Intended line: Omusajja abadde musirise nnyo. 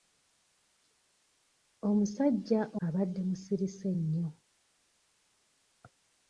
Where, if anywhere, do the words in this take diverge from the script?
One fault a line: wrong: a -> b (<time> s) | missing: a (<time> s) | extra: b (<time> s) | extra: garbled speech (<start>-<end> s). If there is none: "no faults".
no faults